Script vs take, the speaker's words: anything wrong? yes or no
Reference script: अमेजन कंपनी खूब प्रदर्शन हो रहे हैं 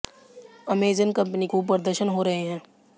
no